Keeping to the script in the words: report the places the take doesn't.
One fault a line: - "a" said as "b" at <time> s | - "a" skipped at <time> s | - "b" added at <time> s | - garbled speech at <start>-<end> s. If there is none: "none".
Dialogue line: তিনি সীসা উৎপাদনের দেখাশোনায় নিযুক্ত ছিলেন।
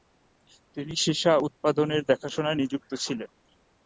none